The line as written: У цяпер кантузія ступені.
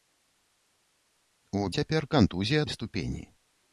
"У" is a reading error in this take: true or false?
false